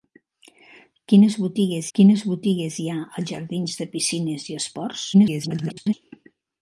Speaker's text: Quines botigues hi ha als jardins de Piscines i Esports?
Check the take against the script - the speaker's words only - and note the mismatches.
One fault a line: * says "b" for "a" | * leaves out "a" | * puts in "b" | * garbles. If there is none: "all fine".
* puts in "quines botigues"
* garbles